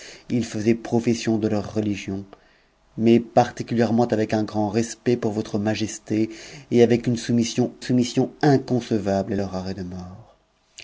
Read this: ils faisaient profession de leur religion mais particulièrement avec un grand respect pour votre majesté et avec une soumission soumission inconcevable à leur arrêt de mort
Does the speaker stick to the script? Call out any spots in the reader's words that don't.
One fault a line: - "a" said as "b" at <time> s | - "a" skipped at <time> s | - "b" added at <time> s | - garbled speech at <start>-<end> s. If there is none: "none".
none